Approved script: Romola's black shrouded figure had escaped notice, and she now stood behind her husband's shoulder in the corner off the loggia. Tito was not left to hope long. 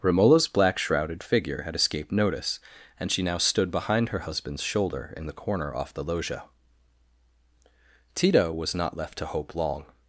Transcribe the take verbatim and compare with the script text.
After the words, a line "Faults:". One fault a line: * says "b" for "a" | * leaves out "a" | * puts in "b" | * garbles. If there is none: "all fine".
Romola's black shrouded figure had escaped notice, and she now stood behind her husband's shoulder in the corner off the loggia. Tito was not left to hope long.
Faults:
all fine